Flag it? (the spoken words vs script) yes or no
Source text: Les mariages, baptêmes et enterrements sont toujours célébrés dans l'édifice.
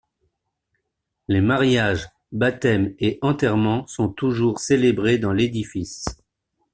no